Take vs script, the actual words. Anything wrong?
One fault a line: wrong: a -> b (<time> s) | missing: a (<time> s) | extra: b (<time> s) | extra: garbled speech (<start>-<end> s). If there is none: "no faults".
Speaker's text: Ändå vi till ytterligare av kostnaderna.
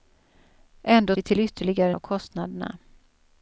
no faults